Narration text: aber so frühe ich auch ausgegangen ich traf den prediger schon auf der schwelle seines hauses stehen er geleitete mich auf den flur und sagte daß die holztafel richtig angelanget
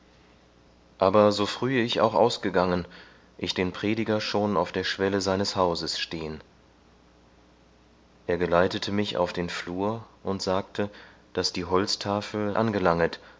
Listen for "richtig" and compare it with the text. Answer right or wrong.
wrong